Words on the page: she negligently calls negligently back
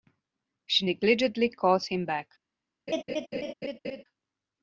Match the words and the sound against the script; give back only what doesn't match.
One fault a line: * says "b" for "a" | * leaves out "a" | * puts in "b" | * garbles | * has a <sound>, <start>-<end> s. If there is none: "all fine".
* says "him" for "negligently"
* has a laugh, 2.9-4.0 s